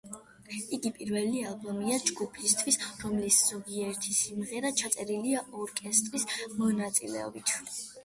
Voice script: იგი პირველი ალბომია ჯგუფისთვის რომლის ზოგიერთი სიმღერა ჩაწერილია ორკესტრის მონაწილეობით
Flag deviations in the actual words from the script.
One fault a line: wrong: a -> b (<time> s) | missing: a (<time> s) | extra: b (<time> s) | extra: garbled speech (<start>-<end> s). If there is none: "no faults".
no faults